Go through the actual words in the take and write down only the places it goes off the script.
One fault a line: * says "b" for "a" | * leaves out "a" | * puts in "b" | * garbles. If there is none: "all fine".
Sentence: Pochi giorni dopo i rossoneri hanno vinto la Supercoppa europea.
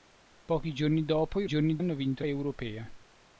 * says "giorni" for "rossoneri"
* leaves out "la Supercoppa"